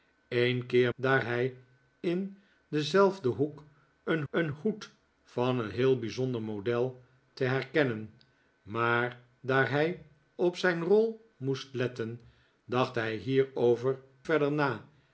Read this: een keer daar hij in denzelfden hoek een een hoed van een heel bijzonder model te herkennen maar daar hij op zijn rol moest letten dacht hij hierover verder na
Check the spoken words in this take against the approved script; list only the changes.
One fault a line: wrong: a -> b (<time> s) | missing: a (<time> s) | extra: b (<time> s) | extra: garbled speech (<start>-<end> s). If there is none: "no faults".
no faults